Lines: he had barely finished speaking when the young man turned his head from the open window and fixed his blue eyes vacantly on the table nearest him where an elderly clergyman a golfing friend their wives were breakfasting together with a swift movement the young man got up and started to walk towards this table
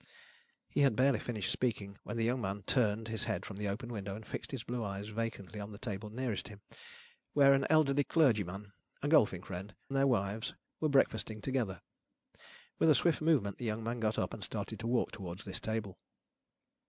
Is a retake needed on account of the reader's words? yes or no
no